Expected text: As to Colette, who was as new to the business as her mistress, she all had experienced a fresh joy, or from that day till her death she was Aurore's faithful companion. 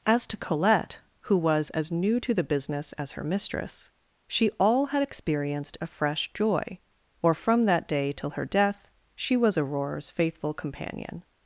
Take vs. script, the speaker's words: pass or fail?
pass